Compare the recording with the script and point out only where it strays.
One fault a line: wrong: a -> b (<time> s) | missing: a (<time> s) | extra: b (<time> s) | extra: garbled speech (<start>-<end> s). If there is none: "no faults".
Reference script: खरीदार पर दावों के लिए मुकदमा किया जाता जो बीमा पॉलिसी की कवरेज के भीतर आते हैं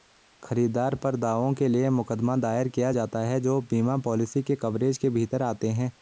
extra: दायर (2.4 s)
extra: है (3.2 s)
wrong: की -> के (4.4 s)